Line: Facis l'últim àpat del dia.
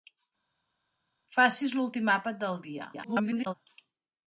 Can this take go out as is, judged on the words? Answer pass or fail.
fail